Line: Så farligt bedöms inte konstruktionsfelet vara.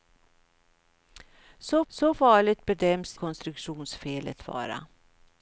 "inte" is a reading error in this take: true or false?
true